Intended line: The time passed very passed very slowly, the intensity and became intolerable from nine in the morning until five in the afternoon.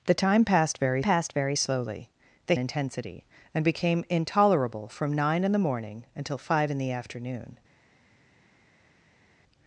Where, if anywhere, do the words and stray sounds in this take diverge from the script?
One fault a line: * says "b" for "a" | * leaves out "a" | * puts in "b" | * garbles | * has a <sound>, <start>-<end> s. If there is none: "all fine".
all fine